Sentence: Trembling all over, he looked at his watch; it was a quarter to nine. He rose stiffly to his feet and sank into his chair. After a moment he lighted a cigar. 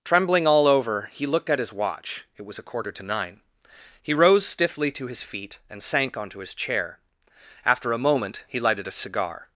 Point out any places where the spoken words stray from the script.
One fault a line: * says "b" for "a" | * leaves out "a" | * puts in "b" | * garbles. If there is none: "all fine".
* says "onto" for "into"